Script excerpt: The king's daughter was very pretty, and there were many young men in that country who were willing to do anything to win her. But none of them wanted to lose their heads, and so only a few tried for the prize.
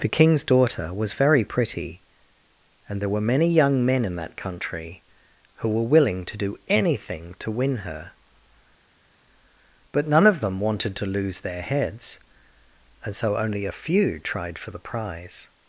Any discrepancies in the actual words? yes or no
no